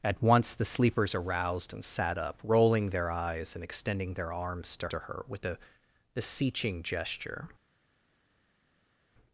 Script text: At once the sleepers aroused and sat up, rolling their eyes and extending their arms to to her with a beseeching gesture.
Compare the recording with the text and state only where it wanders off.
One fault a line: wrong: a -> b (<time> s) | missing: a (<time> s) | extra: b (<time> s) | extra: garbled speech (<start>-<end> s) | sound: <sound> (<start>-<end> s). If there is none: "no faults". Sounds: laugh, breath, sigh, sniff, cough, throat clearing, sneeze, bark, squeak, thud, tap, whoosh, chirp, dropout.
no faults